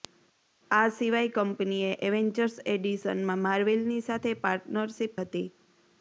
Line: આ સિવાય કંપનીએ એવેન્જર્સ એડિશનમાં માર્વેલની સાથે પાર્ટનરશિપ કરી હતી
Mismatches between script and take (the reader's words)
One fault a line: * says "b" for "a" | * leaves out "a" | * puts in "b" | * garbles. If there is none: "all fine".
* leaves out "કરી"